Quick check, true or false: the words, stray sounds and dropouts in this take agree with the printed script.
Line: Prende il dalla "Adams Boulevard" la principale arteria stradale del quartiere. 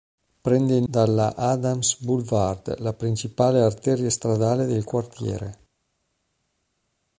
true